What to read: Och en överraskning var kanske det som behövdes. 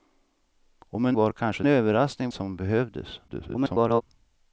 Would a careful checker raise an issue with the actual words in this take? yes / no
yes